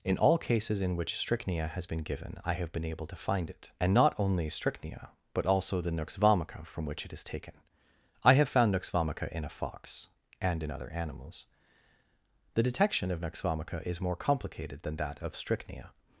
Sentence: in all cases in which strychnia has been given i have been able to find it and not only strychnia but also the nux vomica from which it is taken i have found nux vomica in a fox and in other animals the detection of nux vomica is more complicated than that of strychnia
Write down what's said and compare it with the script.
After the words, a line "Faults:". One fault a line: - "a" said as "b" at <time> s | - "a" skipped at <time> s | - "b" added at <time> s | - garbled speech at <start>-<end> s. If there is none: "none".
in all cases in which strychnia has been given i have been able to find it and not only strychnia but also the nux vomica from which it is taken i have found nux vomica in a fox and in other animals the detection of nux vomica is more complicated than that of strychnia
Faults:
none